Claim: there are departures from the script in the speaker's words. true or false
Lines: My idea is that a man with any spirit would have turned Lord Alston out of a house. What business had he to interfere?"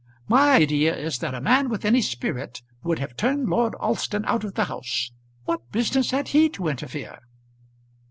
true